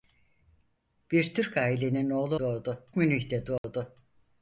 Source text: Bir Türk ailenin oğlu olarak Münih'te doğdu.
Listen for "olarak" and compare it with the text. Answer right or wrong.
wrong